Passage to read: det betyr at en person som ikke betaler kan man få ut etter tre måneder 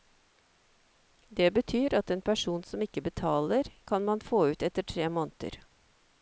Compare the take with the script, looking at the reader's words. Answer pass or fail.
pass